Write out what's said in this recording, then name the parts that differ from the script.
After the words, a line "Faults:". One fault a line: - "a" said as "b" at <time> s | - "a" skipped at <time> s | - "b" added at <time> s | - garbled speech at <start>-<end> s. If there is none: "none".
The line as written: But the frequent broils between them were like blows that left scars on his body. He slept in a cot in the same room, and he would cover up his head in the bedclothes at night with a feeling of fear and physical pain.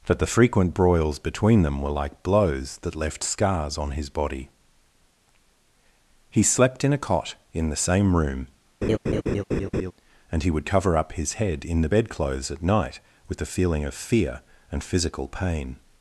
That the frequent broils between them were like blows that left scars on his body. He slept in a cot in the same room, and he would cover up his head in the bedclothes at night with a feeling of fear and physical pain.
Faults:
- "But" said as "That" at 0.1 s